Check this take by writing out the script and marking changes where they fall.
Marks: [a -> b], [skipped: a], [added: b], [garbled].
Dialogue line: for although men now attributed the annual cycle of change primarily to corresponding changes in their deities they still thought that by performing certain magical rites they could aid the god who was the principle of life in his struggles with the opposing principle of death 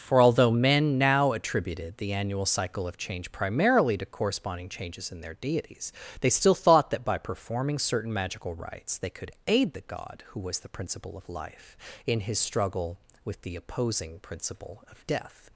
for although men now attributed the annual cycle of change primarily to corresponding changes in their deities they still thought that by performing certain magical rites they could aid the god who was the principle of life in his [struggles -> struggle] with the opposing principle of death